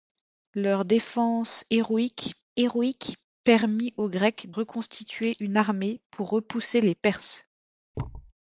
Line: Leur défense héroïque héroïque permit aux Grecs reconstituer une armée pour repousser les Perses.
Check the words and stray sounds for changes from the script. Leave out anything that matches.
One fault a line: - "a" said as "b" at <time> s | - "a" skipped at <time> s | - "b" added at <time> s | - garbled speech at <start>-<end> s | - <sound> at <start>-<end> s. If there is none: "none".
- thud at 7.9-8.3 s